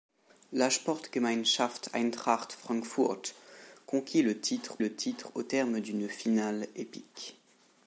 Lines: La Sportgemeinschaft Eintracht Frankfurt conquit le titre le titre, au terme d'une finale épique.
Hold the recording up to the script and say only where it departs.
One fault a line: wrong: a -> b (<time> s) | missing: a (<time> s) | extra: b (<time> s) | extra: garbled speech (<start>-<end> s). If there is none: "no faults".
no faults